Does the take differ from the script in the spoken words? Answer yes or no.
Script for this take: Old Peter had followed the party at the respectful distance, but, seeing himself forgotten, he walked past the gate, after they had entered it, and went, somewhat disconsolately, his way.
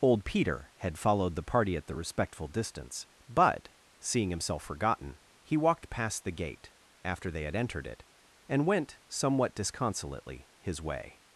no